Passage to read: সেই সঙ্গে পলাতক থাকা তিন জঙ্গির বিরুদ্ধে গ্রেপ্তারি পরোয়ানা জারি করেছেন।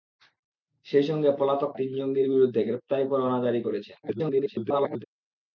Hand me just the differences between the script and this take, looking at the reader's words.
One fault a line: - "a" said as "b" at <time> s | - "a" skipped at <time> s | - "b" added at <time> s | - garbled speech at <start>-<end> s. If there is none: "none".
- "থাকা" skipped at 1.7 s
- garbled speech at 4.0-5.0 s